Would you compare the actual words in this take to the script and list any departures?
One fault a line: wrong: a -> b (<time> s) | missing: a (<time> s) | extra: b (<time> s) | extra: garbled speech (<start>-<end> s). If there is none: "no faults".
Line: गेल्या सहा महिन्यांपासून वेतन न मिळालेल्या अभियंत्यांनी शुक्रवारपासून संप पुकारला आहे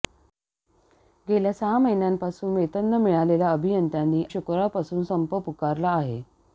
no faults